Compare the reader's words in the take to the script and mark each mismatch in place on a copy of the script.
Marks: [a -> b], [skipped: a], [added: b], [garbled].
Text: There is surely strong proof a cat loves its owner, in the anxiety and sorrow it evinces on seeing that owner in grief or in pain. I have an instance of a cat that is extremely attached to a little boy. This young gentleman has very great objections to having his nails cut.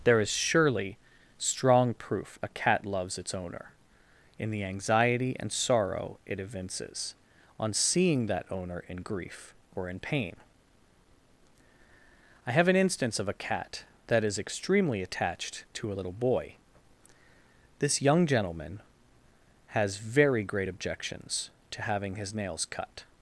There is surely strong proof a cat loves its owner, in the anxiety and sorrow it evinces on seeing that owner in grief or in pain. I have an instance of a cat that is extremely attached to a little boy. This young gentleman has very great objections to having his nails cut.